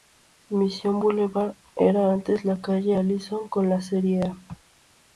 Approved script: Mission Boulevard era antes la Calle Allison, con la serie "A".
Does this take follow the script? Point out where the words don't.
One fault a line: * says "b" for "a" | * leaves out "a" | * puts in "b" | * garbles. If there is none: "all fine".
all fine